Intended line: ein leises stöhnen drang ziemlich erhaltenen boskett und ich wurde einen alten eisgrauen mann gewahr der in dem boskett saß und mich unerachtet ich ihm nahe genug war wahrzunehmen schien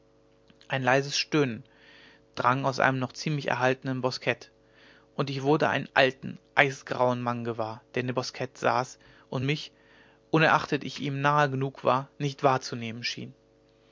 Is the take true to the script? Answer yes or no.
no